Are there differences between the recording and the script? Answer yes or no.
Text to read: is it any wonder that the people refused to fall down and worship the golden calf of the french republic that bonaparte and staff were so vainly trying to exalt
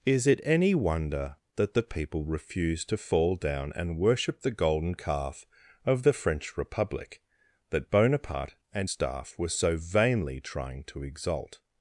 no